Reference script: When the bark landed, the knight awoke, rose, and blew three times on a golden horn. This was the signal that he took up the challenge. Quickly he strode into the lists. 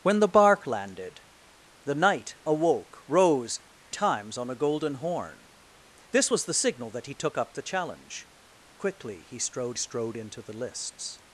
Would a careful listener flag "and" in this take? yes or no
yes